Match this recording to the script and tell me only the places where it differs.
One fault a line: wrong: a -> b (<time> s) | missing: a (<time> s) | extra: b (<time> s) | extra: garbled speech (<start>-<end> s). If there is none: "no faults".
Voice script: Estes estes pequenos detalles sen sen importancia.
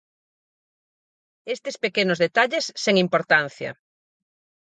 missing: estes (1.8 s)
missing: sen (3.0 s)